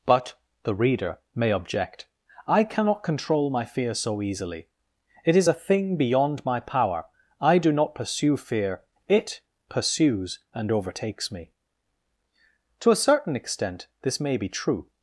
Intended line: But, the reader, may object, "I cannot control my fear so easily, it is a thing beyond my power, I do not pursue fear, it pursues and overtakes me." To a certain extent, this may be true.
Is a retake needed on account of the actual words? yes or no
no